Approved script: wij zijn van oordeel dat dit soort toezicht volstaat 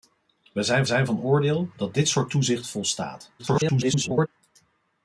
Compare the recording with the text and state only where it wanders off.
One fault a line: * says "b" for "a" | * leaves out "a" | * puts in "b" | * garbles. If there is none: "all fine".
* puts in "zijn"
* garbles